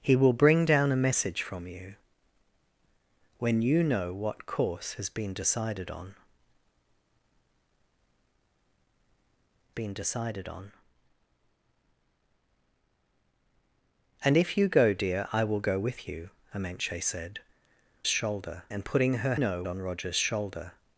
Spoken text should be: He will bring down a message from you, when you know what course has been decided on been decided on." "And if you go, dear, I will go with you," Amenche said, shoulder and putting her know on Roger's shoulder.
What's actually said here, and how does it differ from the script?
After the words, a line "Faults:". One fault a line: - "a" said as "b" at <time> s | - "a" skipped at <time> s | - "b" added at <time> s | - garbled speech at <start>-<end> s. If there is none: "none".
He will bring down a message from you, when you know what course has been decided on been decided on." "And if you go, dear, I will go with you," Amenche said, shoulder and putting her know on Roger's shoulder.
Faults:
none